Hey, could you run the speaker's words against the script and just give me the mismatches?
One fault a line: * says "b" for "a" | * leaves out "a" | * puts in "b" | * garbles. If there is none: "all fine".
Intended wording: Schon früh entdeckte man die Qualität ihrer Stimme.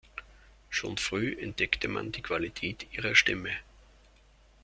all fine